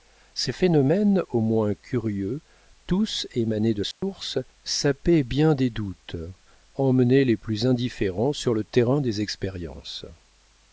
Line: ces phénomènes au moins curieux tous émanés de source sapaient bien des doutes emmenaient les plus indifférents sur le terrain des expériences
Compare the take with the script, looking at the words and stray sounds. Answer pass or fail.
fail